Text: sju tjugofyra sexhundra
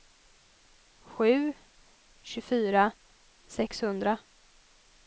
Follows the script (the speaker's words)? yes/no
yes